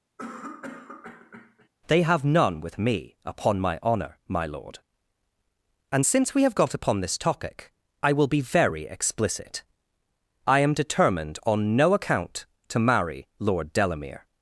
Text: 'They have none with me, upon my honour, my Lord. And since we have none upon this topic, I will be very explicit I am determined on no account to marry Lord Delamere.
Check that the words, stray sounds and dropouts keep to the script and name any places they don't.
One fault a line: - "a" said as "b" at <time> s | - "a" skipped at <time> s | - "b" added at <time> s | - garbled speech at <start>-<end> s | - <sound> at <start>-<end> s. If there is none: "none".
- cough at 0.2-1.7 s
- "none" said as "got" at 6.5 s